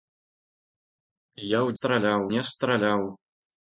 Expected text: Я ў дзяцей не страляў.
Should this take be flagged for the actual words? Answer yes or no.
yes